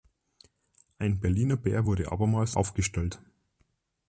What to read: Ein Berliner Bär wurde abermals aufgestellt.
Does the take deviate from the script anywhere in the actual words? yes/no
no